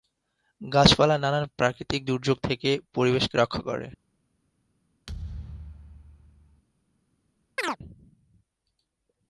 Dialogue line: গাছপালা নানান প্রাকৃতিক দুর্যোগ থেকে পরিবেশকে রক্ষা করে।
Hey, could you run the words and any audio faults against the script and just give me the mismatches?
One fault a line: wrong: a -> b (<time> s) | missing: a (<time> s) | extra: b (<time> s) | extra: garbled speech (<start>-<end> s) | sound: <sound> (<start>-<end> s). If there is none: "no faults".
sound: thud (5.1-6.6 s)
sound: chirp (7.6-7.8 s)